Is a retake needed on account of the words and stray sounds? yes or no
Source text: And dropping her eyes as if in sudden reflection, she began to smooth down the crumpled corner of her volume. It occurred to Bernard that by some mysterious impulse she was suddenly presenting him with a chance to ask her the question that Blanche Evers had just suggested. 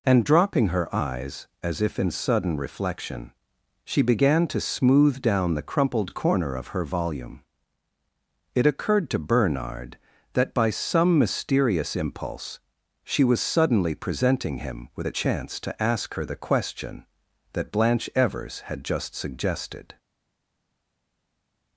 no